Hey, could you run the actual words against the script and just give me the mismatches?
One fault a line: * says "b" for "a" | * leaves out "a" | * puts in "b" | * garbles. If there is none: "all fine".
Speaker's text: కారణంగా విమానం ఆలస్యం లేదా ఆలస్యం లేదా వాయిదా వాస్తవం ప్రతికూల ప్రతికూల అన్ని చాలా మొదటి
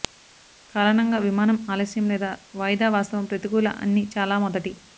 * leaves out "ఆలస్యం లేదా"
* leaves out "ప్రతికూల"